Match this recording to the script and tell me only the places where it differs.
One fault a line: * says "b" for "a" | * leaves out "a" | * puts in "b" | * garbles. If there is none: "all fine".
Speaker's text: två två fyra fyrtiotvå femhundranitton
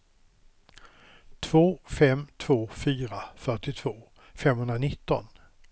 * puts in "fem"